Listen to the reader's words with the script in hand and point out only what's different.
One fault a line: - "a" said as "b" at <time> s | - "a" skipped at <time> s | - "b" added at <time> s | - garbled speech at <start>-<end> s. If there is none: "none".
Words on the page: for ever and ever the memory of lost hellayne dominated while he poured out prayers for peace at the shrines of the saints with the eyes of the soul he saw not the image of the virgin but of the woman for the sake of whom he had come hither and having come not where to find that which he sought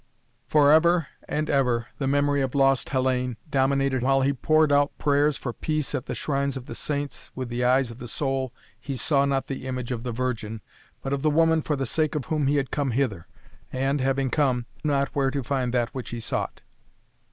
none